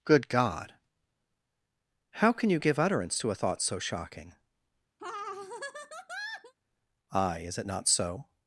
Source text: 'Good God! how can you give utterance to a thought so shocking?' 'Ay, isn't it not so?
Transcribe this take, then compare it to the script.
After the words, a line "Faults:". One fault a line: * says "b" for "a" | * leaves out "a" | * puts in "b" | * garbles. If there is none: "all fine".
'Good God! how can you give utterance to a thought so shocking?' 'Ay, is it not so?
Faults:
* says "is" for "isn't"